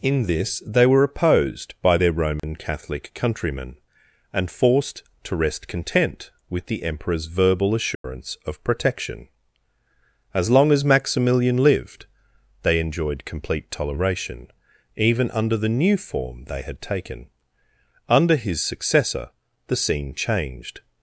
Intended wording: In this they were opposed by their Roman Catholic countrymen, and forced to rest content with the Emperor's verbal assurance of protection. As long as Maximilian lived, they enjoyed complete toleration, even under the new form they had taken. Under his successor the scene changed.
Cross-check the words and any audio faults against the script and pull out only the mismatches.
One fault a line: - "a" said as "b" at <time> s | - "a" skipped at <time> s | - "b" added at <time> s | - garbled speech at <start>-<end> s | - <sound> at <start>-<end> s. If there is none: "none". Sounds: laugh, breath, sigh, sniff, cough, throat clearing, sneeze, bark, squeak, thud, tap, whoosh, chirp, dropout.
- dropout at 2.4-2.4 s
- dropout at 7.9-8.0 s